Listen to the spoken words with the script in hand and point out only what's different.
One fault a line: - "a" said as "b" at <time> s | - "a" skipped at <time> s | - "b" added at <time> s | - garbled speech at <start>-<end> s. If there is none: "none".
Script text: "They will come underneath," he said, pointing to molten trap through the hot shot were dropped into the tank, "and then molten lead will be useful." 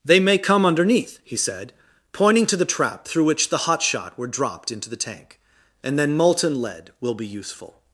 - "will" said as "may" at 0.2 s
- "molten" said as "the" at 2.6 s
- "which" added at 3.2 s